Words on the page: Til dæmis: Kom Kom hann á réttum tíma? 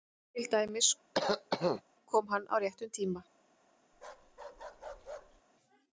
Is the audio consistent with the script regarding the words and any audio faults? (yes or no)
no